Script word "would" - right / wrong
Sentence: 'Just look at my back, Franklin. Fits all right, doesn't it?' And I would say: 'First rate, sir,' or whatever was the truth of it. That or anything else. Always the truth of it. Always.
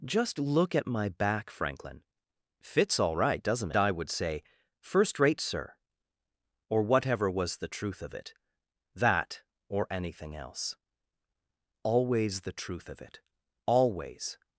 right